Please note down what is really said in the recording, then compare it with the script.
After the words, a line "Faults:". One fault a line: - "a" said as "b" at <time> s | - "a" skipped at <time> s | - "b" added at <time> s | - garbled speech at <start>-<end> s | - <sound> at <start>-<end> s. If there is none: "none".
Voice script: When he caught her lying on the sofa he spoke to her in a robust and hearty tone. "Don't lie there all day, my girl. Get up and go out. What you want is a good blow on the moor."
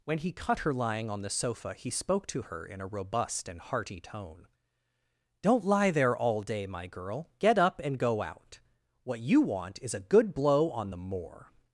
When he cut her lying on the sofa he spoke to her in a robust and hearty tone. "Don't lie there all day, my girl. Get up and go out. What you want is a good blow on the moor."
Faults:
- "caught" said as "cut" at 0.3 s